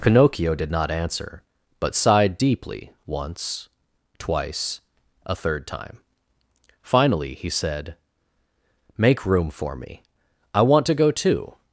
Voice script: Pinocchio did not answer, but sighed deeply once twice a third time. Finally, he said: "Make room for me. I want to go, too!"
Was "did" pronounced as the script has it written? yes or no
yes